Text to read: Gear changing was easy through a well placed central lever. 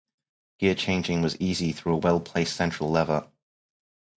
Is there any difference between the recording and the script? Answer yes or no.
no